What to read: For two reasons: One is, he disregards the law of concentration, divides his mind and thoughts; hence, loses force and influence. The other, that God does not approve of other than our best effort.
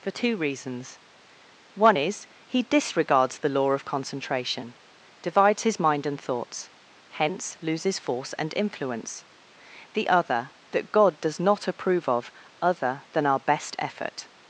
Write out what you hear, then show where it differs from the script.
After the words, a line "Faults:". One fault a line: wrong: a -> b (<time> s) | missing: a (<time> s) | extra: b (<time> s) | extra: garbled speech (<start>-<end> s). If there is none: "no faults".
For two reasons: One is, he disregards the law of concentration, divides his mind and thoughts; hence, loses force and influence. The other, that God does not approve of other than our best effort.
Faults:
no faults